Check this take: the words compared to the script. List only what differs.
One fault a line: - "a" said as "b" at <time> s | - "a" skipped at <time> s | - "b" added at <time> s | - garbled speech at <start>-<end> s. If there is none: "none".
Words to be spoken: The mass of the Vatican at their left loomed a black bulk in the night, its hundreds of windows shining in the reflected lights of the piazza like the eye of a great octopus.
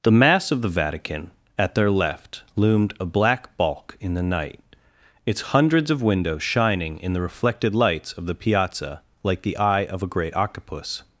none